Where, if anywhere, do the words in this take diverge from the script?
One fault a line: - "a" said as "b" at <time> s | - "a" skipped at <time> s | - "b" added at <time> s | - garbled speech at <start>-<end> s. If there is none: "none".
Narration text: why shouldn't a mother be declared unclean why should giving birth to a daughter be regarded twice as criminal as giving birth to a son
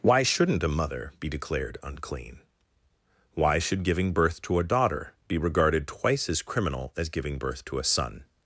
none